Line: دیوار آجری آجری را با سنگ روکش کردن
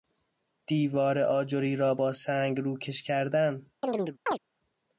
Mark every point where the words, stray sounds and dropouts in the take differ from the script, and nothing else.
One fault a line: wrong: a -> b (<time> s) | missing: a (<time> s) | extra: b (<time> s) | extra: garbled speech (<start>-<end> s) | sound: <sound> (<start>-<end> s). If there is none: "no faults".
missing: آجری (1.8 s)
sound: chirp (3.8-4.4 s)